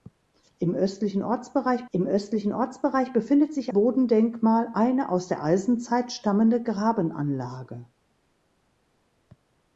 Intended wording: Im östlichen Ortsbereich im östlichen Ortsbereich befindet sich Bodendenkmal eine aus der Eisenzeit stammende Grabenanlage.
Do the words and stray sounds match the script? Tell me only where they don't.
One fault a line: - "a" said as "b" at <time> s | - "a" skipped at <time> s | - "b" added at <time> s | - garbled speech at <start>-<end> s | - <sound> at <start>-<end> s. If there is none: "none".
none